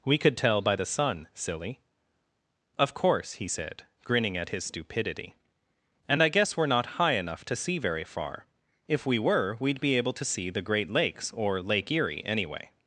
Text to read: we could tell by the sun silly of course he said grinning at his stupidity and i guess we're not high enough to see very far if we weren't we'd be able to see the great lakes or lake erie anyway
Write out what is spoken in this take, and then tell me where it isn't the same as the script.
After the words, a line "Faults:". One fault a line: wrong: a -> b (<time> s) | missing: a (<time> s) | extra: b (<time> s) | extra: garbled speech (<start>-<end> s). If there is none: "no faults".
we could tell by the sun silly of course he said grinning at his stupidity and i guess we're not high enough to see very far if we were we'd be able to see the great lakes or lake erie anyway
Faults:
wrong: weren't -> were (9.2 s)